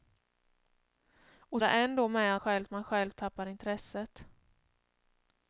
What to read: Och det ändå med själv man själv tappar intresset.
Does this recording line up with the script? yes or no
yes